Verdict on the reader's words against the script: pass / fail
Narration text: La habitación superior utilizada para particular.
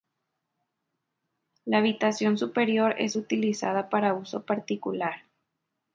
fail